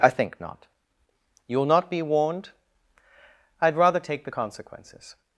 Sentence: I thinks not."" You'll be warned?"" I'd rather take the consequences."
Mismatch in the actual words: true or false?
true